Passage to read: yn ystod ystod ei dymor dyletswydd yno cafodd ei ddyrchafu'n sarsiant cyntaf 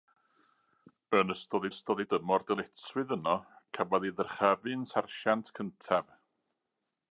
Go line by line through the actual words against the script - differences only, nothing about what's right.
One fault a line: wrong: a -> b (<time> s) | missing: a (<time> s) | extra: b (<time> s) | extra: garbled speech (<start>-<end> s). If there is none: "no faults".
no faults